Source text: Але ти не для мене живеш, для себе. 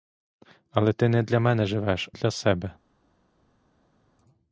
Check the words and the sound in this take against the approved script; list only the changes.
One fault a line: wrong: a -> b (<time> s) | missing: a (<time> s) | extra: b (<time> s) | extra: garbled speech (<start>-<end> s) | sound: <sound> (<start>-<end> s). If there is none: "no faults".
no faults